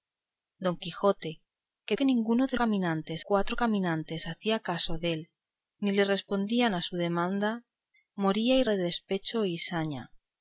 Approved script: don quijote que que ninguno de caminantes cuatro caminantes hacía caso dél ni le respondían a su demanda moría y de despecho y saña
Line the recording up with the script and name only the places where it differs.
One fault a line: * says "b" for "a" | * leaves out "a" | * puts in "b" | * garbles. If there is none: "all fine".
all fine